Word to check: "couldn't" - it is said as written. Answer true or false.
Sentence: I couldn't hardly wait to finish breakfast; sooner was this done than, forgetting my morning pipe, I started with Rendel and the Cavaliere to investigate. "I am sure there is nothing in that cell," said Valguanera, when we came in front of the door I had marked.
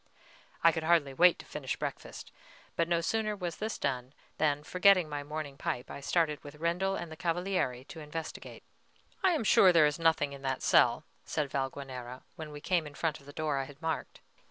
false